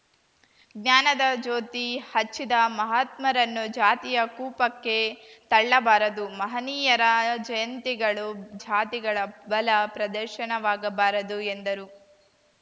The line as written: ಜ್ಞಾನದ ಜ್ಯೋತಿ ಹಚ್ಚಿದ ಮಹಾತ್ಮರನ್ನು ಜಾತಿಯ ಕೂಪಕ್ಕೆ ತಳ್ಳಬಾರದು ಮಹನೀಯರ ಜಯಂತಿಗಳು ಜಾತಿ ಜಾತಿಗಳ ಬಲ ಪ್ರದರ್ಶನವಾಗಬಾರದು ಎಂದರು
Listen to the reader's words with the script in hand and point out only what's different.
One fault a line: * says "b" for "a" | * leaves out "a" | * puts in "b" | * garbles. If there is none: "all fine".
* leaves out "ಜಾತಿ"